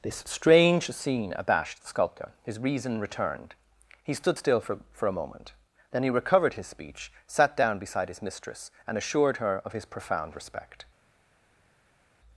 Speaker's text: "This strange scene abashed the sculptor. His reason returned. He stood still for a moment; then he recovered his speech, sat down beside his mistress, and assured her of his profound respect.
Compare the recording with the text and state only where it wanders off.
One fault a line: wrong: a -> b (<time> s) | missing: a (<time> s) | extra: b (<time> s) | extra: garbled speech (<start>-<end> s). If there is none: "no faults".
extra: for (4.9 s)